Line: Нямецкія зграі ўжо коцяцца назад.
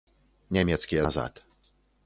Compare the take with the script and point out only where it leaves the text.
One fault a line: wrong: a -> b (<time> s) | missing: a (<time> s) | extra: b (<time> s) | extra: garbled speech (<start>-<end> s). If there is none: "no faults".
missing: зграі ўжо коцяцца (1.0 s)